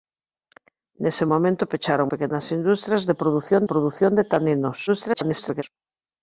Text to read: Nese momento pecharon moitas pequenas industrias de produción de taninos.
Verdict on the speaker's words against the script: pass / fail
fail